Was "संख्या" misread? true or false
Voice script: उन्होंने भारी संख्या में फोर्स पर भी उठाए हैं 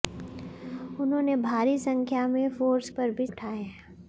false